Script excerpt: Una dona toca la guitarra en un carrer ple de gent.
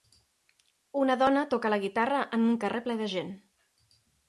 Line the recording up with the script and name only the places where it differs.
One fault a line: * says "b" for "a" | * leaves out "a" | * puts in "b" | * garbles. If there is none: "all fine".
all fine